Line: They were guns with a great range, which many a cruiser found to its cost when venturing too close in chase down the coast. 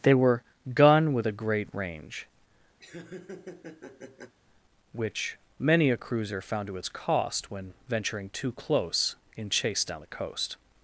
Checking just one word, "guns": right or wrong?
wrong